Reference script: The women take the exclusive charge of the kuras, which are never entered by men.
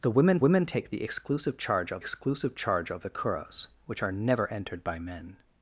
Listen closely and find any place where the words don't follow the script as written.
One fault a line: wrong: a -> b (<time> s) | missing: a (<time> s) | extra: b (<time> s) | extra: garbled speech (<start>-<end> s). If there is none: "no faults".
extra: women (0.4 s)
extra: exclusive charge of (2.0 s)